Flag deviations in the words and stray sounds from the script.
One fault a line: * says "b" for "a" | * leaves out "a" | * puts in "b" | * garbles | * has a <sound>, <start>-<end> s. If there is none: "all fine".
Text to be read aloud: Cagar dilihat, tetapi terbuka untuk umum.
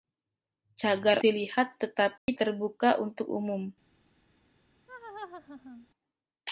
* has a dropout, 2.2-2.3 s
* has a laugh, 4.9-5.9 s